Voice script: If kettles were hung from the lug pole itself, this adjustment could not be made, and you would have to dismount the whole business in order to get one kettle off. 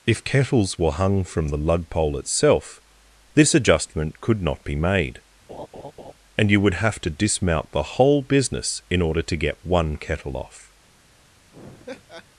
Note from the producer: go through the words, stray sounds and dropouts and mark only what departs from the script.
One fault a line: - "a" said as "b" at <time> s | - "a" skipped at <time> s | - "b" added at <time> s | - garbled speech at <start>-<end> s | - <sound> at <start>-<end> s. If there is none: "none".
- laugh at 5.5-6.1 s
- laugh at 11.5-12.3 s